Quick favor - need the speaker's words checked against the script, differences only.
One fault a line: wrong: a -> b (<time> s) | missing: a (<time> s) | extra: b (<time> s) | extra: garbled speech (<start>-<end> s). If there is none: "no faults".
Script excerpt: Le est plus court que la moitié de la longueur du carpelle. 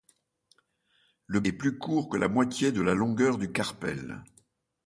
no faults